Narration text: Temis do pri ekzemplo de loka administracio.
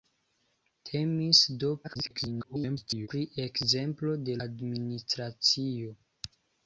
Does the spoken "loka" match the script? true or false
false